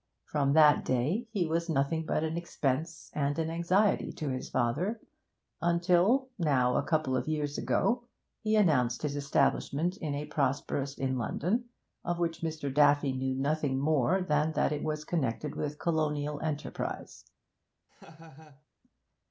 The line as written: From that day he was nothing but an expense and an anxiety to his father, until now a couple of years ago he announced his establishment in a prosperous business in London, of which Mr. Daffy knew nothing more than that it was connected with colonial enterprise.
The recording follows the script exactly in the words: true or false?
false